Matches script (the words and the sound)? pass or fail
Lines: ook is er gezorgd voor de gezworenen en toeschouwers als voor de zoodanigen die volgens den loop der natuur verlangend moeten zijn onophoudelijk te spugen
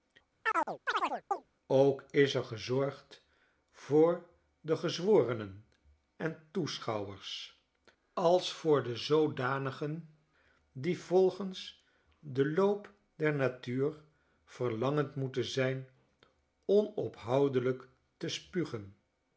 fail